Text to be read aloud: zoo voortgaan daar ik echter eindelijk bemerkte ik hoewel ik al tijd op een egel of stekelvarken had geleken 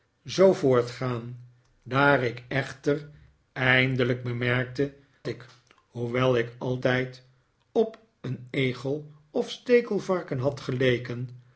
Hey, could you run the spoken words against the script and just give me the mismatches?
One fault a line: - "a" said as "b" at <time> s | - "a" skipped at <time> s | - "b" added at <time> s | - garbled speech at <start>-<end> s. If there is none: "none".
none